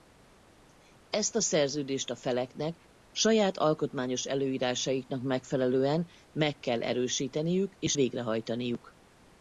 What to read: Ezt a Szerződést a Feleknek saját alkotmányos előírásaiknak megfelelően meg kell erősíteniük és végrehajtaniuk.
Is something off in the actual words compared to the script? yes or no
no